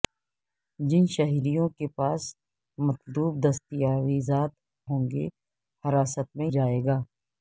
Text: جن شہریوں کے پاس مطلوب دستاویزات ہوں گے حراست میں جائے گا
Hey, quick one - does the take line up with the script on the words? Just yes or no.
yes